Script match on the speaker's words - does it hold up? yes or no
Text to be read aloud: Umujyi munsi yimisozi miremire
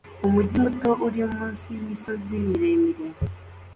no